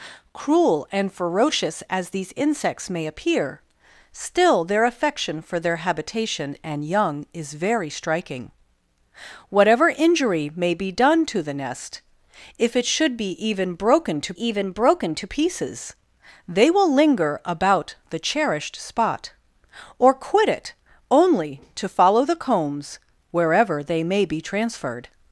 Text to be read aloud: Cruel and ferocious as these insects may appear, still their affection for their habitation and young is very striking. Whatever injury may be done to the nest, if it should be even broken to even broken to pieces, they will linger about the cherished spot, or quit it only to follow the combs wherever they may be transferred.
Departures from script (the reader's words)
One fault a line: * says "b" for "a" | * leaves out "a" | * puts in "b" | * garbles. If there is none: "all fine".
all fine